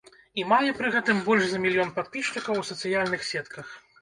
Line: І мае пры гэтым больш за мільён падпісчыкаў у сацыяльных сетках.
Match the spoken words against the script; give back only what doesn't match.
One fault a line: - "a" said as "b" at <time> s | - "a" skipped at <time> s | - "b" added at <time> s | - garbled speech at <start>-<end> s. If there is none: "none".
none